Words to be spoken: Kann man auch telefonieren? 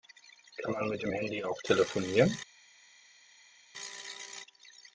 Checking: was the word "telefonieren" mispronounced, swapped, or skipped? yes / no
no